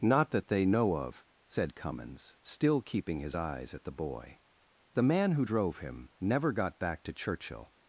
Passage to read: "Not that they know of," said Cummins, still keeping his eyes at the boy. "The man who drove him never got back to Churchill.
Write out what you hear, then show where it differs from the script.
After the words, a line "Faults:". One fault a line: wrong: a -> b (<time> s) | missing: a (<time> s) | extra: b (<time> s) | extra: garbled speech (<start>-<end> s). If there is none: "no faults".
"Not that they know of," said Cummins, still keeping his eyes at the boy. "The man who drove him never got back to Churchill.
Faults:
no faults